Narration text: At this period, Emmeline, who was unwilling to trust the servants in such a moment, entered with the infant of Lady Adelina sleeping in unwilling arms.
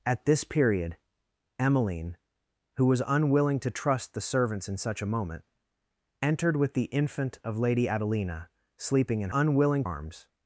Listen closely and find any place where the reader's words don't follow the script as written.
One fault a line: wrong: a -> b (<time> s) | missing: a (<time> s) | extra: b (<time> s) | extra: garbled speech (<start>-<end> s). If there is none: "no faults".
no faults